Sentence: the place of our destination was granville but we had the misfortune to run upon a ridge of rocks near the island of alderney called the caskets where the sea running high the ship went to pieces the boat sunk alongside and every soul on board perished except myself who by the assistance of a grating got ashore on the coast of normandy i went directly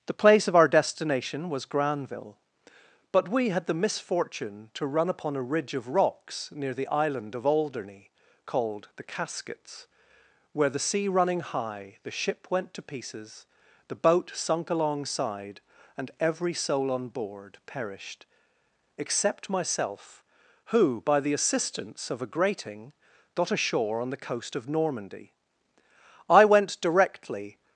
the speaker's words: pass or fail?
pass